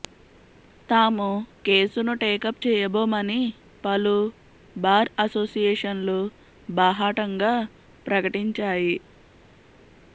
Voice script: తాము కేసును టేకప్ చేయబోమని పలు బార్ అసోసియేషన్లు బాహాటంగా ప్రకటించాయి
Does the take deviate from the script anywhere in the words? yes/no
no